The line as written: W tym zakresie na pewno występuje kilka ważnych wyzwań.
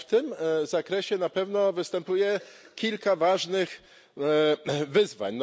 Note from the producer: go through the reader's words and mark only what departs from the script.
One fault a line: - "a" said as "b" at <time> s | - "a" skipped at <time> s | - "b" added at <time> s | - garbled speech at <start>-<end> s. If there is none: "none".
none